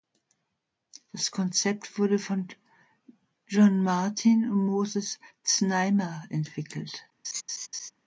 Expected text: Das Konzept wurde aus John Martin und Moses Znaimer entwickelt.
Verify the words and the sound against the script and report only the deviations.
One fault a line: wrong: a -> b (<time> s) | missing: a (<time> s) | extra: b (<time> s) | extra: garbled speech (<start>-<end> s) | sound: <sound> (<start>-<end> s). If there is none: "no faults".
wrong: aus -> von (2.2 s)
sound: laugh (7.2-7.9 s)